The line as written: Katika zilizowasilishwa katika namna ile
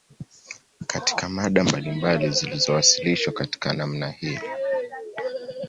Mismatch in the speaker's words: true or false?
true